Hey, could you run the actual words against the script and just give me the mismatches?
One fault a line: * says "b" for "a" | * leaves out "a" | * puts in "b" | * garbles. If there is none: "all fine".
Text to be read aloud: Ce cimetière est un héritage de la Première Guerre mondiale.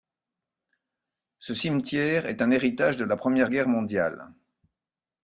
all fine